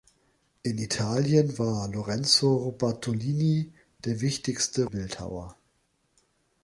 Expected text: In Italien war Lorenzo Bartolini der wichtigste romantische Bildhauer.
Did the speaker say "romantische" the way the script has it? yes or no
no